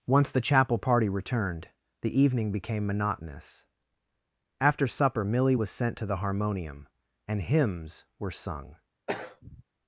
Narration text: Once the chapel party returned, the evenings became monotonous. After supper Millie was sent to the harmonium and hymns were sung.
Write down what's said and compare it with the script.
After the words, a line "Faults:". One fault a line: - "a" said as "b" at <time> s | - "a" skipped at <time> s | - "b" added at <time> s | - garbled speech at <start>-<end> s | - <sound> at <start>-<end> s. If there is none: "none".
Once the chapel party returned, the evening became monotonous. After supper Millie was sent to the harmonium and hymns were sung.
Faults:
- "evenings" said as "evening" at 2.2 s
- throat clearing at 9.1-9.6 s